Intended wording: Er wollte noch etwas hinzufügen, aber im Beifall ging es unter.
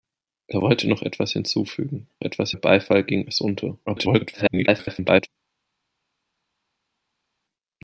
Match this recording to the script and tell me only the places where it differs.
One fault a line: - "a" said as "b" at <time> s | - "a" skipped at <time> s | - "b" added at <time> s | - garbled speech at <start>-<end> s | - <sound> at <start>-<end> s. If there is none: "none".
- "aber" said as "etwas" at 2.2 s
- garbled speech at 3.8-5.3 s